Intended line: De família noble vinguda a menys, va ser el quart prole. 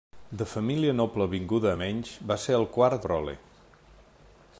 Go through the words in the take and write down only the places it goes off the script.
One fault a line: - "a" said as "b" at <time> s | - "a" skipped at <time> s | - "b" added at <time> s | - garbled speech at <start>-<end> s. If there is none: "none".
none